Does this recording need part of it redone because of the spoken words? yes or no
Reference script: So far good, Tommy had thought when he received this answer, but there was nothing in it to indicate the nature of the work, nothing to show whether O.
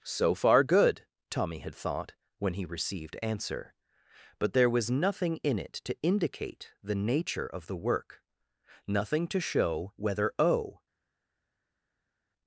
yes